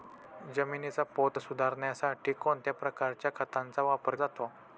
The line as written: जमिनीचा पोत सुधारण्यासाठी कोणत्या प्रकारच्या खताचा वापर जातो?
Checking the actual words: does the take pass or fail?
pass